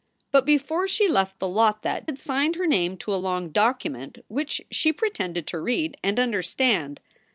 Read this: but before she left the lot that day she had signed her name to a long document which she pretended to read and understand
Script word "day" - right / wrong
wrong